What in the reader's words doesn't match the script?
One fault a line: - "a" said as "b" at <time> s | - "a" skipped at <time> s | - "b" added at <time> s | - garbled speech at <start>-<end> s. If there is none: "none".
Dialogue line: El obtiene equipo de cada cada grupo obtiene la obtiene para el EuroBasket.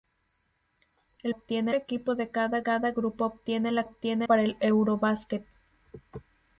none